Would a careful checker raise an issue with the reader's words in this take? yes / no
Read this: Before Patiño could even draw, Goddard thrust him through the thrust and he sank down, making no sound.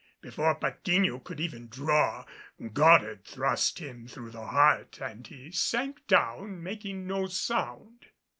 yes